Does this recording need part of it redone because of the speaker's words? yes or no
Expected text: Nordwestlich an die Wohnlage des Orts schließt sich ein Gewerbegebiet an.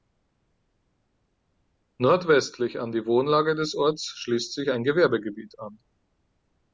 no